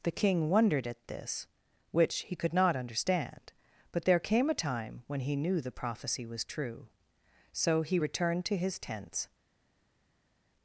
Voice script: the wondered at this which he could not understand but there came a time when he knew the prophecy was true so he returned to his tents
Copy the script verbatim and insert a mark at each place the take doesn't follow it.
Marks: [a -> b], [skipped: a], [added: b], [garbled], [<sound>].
the [added: king] wondered at this which he could not understand but there came a time when he knew the prophecy was true so he returned to his tents